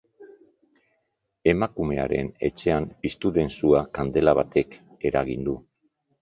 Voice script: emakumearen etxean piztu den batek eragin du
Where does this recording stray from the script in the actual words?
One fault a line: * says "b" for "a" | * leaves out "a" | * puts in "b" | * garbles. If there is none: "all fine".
* puts in "sua kandela"